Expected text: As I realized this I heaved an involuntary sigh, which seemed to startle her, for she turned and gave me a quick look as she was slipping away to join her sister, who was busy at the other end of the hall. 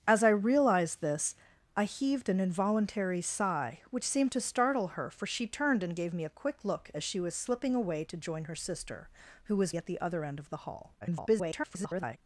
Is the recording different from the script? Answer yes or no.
yes